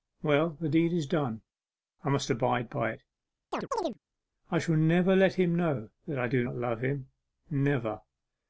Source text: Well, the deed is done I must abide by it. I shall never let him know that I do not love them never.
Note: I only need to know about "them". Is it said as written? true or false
false